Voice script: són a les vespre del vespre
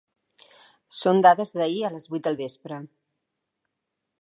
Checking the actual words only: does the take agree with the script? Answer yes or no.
no